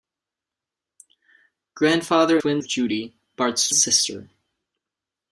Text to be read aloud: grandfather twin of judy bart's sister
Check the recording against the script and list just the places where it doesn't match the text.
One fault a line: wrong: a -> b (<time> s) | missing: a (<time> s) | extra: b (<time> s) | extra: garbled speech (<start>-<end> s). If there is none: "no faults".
no faults